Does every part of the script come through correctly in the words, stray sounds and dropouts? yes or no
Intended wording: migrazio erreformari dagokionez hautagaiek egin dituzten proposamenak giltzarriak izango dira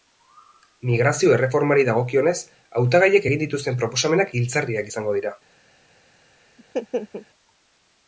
no